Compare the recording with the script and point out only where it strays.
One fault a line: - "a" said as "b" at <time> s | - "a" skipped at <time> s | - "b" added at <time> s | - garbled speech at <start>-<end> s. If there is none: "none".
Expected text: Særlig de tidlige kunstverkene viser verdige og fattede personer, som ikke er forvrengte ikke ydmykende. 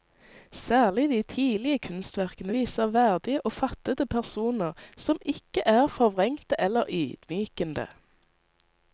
- "ikke" said as "eller" at 6.6 s